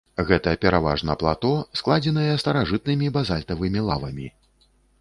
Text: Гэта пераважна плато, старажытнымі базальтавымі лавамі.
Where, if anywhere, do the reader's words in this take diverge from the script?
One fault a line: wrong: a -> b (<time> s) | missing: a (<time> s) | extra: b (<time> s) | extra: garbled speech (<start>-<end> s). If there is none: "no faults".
extra: складзеныя (1.8 s)